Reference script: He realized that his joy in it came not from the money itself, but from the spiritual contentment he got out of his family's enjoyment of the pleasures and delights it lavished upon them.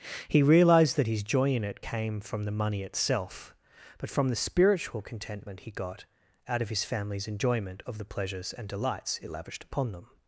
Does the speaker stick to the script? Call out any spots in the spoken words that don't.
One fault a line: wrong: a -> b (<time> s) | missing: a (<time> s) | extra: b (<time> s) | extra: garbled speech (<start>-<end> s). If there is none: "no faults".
missing: not (2.2 s)